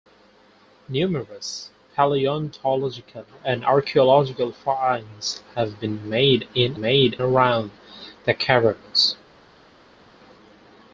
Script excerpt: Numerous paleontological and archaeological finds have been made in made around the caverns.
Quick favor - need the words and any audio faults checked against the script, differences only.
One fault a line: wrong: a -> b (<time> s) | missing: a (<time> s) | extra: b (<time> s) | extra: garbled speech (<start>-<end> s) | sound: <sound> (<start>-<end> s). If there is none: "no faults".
no faults